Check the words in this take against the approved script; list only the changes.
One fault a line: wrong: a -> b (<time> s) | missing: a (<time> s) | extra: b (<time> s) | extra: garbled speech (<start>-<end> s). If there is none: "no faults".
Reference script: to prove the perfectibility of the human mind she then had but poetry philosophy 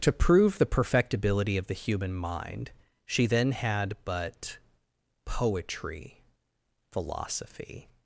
no faults